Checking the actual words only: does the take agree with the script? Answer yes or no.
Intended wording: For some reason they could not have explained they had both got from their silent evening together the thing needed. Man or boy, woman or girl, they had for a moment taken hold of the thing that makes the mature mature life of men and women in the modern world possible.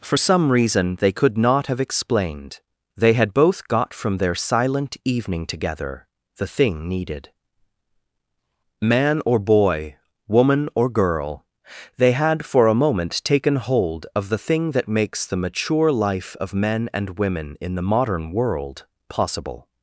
no